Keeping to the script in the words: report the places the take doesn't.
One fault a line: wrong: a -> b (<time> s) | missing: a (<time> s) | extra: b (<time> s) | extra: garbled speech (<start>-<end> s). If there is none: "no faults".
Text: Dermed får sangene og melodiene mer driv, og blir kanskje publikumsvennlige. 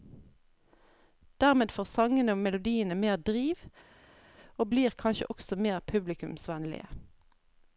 extra: også mer (5.3 s)